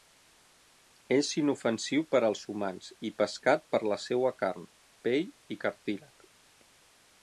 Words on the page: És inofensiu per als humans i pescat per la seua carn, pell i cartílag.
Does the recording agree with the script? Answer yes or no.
yes